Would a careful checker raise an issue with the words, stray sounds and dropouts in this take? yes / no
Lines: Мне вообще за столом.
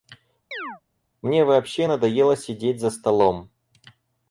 yes